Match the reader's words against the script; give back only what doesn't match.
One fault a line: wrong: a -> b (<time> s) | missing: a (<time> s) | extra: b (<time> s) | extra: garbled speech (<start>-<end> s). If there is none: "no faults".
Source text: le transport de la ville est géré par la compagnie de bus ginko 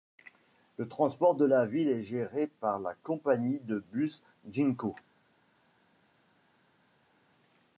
no faults